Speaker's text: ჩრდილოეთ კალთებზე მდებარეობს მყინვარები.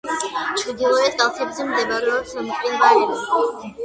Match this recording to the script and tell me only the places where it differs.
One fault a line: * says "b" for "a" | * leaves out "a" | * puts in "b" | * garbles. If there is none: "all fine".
all fine